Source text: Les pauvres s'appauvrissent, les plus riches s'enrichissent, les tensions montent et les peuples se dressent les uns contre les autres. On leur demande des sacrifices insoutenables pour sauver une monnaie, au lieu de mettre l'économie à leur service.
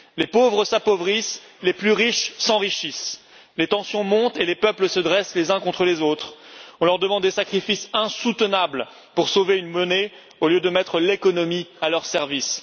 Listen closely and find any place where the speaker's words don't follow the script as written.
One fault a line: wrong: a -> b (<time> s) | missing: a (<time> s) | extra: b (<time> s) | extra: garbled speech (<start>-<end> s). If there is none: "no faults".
no faults